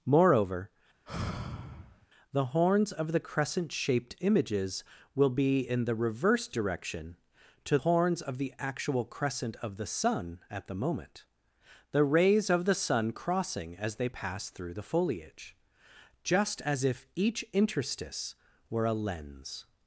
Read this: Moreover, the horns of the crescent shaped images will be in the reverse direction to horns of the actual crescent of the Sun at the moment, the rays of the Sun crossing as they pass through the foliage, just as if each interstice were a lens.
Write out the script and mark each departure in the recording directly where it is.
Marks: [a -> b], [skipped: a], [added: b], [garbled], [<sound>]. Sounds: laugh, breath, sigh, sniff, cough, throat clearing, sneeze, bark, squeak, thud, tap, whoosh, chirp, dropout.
Moreover, [sigh] the horns of the crescent shaped images will be in the reverse direction to horns of the actual crescent of the Sun at the moment, the rays of the Sun crossing as they pass through the foliage, just as if each interstice were a lens.